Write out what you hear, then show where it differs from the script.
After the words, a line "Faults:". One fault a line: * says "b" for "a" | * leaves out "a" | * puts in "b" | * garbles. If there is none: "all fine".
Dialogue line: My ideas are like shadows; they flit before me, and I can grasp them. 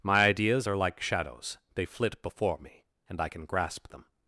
My ideas are like shadows; they flit before me, and I can grasp them.
Faults:
all fine